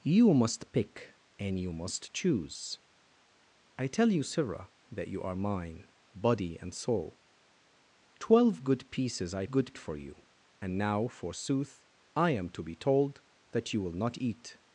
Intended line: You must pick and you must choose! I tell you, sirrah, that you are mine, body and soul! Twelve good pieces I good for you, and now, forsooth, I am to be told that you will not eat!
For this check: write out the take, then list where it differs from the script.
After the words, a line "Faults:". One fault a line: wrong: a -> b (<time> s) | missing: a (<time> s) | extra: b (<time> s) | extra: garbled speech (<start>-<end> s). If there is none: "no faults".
You must pick and you must choose! I tell you, sirrah, that you are mine, body and soul! Twelve good pieces I good for you, and now, forsooth, I am to be told that you will not eat!
Faults:
no faults